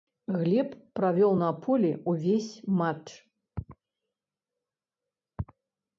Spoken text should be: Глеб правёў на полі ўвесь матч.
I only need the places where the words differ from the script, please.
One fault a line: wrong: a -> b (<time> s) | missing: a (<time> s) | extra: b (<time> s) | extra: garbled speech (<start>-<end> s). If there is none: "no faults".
no faults